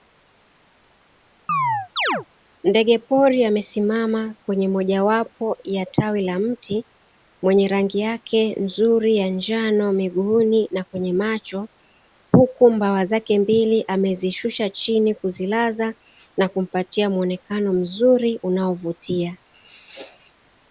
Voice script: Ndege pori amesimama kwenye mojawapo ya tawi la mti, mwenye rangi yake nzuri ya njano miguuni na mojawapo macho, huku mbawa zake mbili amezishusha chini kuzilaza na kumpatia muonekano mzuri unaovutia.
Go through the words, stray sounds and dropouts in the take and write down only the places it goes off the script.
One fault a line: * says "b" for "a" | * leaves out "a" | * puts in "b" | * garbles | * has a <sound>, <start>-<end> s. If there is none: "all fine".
* has a chirp, 1.5-2.3 s
* says "kwenye" for "mojawapo"